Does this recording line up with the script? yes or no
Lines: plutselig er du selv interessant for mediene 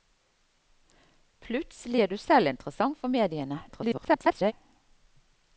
no